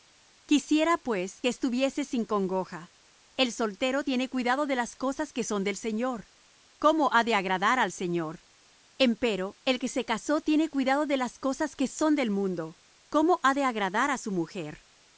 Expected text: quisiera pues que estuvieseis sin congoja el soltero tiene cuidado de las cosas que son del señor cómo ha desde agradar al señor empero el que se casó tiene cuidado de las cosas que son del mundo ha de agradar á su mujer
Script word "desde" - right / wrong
wrong